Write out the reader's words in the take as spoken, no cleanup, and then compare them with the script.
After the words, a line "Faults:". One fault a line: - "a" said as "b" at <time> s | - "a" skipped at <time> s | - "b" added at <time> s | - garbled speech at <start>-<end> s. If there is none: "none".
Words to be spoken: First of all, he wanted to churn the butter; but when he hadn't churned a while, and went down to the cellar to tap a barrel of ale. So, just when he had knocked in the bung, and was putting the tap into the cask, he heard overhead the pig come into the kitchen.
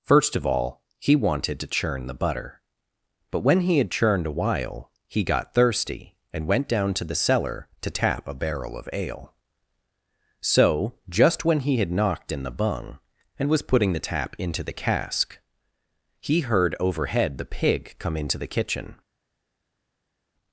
First of all, he wanted to churn the butter; but when he had churned a while, he got thirsty, and went down to the cellar to tap a barrel of ale. So, just when he had knocked in the bung, and was putting the tap into the cask, he heard overhead the pig come into the kitchen.
Faults:
- "hadn't" said as "had" at 3.8 s
- "he got thirsty" added at 5.1 s